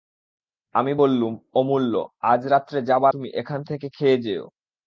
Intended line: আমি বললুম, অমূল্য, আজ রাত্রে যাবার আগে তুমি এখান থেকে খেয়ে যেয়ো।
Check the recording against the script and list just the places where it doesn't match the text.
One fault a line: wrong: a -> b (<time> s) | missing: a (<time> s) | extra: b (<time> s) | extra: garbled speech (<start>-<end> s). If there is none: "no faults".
missing: আগে (3.1 s)